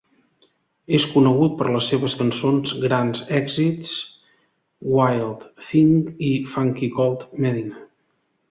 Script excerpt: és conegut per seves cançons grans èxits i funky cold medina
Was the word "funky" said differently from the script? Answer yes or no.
no